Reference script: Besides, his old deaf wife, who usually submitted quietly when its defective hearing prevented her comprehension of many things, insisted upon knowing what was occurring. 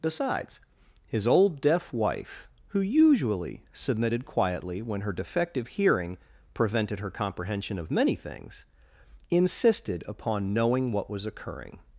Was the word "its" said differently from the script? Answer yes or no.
yes